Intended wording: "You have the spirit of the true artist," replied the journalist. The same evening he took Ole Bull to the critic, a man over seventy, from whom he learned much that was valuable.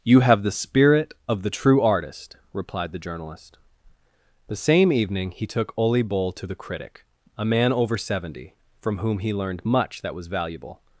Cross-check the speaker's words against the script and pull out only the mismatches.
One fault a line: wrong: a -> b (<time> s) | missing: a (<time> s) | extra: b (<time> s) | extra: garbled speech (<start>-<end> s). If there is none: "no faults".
no faults